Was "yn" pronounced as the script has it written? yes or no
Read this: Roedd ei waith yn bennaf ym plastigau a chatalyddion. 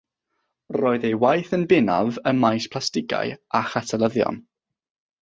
yes